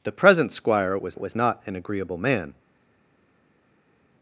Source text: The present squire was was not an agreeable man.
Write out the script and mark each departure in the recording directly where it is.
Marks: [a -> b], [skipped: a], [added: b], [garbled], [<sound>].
The present squire was was not an agreeable man.